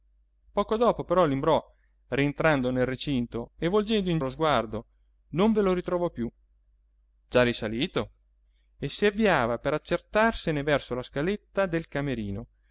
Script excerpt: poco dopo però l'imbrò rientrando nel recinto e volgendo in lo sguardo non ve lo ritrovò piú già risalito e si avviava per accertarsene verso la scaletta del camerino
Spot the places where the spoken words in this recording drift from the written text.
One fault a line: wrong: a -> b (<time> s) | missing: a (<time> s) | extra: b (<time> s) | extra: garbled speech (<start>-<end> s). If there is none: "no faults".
no faults